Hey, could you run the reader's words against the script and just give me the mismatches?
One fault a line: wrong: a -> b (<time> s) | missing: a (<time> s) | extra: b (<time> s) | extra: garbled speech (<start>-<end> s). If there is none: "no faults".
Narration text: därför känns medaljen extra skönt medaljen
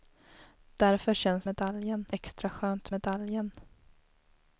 no faults